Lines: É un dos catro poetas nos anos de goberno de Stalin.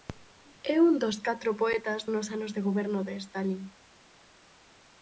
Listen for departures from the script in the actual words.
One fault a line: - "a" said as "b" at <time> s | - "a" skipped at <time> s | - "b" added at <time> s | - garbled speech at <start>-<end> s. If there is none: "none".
none